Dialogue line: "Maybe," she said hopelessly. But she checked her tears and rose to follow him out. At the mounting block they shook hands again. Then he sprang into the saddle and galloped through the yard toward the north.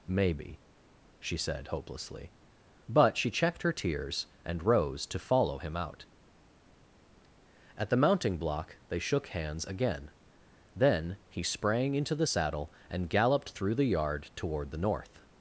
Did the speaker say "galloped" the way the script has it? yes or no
yes